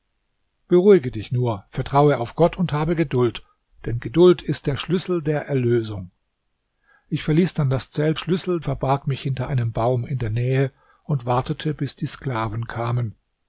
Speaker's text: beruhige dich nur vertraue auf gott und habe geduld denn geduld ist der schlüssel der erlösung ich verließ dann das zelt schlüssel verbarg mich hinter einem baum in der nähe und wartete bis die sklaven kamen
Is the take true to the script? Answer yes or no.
yes